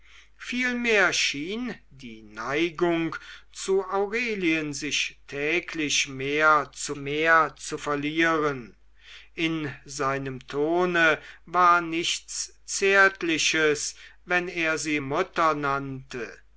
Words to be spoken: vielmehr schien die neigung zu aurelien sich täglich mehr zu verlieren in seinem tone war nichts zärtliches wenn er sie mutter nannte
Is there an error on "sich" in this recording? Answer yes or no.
no